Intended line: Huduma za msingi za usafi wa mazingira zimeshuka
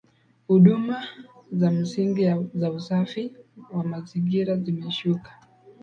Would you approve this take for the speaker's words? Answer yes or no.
yes